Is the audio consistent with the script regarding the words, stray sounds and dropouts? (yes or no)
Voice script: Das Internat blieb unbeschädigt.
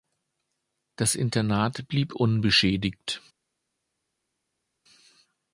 yes